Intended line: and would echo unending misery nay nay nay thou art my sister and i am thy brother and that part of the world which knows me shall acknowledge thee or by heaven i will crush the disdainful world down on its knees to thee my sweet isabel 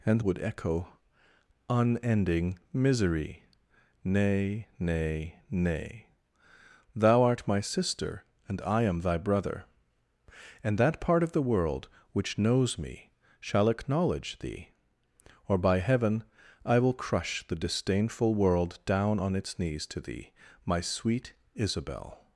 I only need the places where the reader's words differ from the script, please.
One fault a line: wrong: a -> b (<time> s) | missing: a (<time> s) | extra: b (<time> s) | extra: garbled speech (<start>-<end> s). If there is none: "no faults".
no faults